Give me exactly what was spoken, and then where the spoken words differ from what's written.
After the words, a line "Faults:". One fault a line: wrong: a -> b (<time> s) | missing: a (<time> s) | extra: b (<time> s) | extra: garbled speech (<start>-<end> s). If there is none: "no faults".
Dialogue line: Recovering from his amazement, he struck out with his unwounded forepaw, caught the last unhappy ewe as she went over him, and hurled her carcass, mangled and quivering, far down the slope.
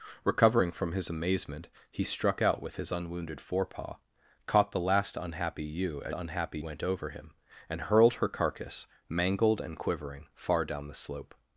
Recovering from his amazement, he struck out with his unwounded forepaw, caught the last unhappy ewe as unhappy went over him, and hurled her carcass, mangled and quivering, far down the slope.
Faults:
wrong: she -> unhappy (6.1 s)